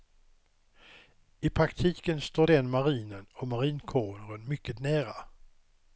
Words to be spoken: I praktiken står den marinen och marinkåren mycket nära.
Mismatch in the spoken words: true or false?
false